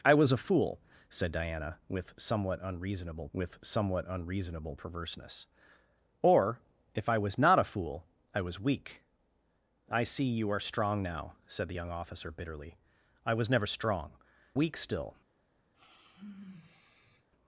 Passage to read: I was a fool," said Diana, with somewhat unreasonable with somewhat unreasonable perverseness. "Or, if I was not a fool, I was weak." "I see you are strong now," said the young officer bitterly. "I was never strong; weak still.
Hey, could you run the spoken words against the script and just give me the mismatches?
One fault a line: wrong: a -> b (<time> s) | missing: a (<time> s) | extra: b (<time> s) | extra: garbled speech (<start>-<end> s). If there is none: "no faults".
no faults